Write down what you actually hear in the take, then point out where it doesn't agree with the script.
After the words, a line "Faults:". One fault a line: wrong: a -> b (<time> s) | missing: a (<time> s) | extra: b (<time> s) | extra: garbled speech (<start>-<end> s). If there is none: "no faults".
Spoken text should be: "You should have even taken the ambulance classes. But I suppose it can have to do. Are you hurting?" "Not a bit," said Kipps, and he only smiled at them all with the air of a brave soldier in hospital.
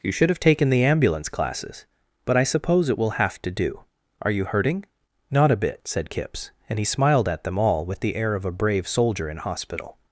"You should have taken the ambulance classes. But I suppose it will have to do. Are you hurting?" "Not a bit," said Kipps, and he smiled at them all with the air of a brave soldier in hospital.
Faults:
missing: even (0.4 s)
wrong: can -> will (3.0 s)
missing: only (6.8 s)